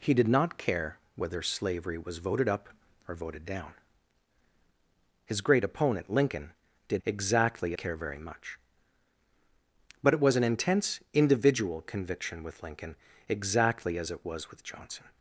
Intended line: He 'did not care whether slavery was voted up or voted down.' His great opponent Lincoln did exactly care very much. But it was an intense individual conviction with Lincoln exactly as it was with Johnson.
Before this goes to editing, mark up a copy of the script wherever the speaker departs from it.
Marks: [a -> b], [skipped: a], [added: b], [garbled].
He 'did not care whether slavery was voted up or voted down.' His great opponent Lincoln did exactly care very much. But it was an intense individual conviction with Lincoln exactly as it was with Johnson.